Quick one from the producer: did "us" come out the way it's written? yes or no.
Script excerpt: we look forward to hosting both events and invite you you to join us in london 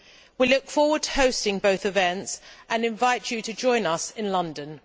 yes